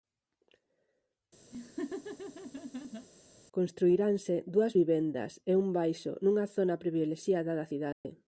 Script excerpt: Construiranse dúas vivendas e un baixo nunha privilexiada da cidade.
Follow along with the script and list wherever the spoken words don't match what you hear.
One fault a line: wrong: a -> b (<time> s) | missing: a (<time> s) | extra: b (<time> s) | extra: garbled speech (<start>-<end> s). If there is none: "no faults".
extra: zona (6.6 s)